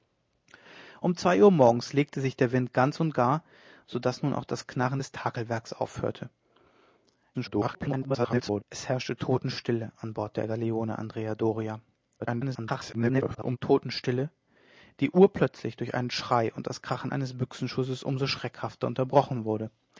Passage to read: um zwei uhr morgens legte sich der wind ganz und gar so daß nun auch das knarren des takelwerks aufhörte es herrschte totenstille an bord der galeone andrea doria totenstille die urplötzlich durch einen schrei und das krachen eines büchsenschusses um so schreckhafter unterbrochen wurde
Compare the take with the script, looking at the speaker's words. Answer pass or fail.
fail